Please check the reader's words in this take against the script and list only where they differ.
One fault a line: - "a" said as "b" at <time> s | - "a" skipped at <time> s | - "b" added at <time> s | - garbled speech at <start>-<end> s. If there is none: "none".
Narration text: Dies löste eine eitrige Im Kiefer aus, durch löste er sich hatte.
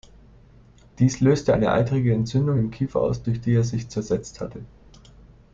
- "Entzündung" added at 2.1 s
- "löste" said as "die" at 3.4 s
- "zersetzt" added at 3.9 s